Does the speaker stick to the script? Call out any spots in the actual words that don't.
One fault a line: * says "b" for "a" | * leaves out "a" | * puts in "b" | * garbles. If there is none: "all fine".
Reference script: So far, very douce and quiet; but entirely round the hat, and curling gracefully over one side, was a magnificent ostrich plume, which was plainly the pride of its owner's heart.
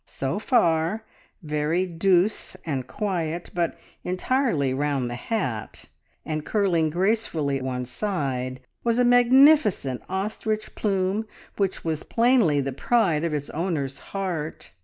* leaves out "over"